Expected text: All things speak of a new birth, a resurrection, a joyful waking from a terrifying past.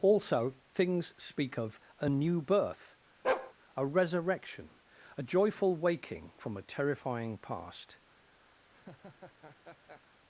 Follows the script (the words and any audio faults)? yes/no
no